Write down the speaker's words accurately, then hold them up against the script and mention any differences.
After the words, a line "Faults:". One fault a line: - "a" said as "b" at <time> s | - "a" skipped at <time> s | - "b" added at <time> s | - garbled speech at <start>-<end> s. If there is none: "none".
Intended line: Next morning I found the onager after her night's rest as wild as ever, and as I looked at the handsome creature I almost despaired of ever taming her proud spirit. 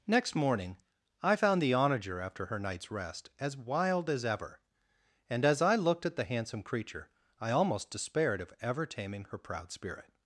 Next morning I found the onager after her night's rest as wild as ever, and as I looked at the handsome creature I almost despaired of ever taming her proud spirit.
Faults:
none